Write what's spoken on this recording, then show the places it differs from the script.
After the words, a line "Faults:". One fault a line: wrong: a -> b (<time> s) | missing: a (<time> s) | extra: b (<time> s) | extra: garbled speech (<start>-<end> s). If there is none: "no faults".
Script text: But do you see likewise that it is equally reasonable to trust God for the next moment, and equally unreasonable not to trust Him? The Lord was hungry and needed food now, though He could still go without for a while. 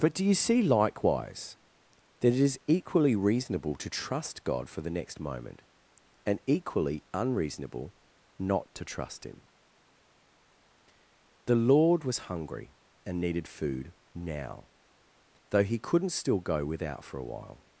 But do you see likewise that it is equally reasonable to trust God for the next moment, and equally unreasonable not to trust Him? The Lord was hungry and needed food now, though He couldn't still go without for a while.
Faults:
wrong: could -> couldn't (15.8 s)